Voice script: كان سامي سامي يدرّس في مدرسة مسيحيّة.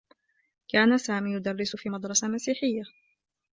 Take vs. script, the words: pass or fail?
fail